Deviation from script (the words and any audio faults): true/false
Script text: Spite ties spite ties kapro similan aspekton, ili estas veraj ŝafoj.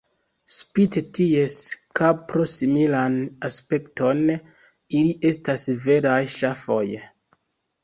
true